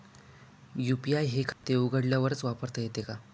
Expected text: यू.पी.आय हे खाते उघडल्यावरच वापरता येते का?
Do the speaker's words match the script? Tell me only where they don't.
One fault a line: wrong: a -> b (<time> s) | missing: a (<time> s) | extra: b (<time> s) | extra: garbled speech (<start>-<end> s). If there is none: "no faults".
no faults